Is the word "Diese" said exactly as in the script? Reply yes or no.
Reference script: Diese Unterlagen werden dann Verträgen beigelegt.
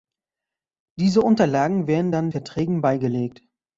yes